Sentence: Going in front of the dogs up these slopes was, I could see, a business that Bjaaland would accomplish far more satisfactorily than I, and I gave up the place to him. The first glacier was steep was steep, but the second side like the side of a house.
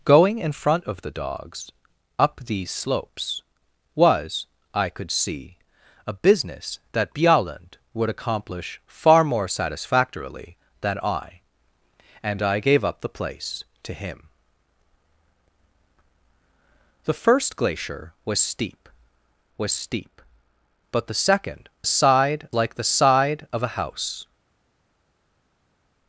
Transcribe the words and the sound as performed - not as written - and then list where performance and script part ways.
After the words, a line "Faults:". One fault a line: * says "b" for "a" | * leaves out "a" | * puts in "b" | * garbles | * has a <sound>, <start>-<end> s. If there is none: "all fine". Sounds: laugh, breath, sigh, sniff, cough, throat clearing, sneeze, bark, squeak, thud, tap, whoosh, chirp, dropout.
Going in front of the dogs up these slopes was, I could see, a business that Bjaaland would accomplish far more satisfactorily than I, and I gave up the place to him. The first glacier was steep was steep, but the second side like the side of a house.
Faults:
all fine